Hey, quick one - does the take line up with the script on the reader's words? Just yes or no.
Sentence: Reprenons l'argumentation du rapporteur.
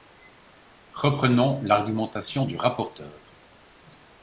yes